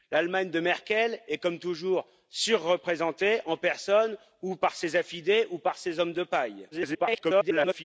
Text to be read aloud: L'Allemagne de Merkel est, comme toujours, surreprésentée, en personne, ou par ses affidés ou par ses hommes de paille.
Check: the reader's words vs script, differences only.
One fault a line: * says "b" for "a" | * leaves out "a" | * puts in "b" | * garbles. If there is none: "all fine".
* garbles